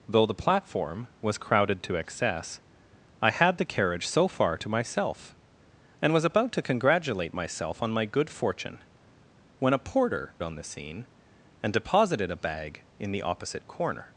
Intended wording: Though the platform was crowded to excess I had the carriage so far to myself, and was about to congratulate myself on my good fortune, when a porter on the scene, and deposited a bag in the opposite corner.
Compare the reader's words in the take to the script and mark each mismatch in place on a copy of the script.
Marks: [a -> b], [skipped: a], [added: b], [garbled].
Though the platform was crowded to excess I had the carriage so far to myself, and was about to congratulate myself on my good fortune, when a porter on the scene, and deposited a bag in the opposite corner.